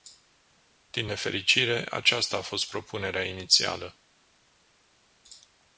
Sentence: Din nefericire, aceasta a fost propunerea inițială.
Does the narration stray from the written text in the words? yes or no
no